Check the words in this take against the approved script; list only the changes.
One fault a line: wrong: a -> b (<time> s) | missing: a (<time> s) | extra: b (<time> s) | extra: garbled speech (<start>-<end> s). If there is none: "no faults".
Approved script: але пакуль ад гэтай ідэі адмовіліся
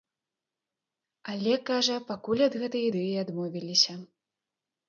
extra: кажа (1.7 s)